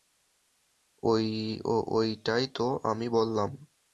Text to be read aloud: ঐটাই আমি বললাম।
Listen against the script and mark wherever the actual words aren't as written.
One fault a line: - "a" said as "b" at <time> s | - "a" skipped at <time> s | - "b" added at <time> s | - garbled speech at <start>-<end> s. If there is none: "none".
- "তো" added at 2.6 s